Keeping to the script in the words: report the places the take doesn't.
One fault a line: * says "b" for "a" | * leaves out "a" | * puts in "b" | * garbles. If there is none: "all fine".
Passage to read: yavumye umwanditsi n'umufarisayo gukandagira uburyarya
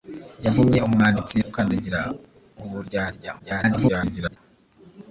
* leaves out "n'umufarisayo"
* garbles